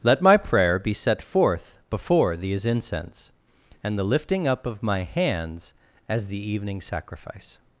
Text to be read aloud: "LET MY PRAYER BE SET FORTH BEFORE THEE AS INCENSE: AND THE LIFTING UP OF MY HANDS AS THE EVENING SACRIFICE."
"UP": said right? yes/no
yes